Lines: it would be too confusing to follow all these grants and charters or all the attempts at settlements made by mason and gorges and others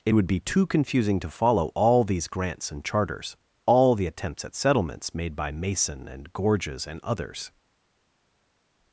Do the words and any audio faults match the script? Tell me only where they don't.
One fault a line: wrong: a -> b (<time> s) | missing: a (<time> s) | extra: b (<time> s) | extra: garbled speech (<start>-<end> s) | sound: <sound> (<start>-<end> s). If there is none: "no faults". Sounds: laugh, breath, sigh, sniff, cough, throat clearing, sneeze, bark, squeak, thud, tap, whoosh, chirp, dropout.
missing: or (3.4 s)